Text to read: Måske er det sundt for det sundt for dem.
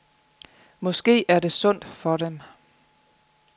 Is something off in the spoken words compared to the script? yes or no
yes